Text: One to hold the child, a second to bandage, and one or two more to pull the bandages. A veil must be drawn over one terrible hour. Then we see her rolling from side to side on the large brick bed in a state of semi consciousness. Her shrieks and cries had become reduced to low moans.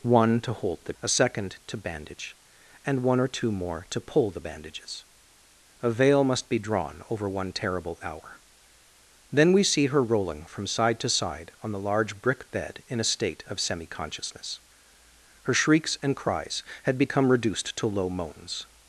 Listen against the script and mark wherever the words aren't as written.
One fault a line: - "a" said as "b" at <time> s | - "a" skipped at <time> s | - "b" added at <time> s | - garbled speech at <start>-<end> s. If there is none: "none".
- "child" skipped at 1.0 s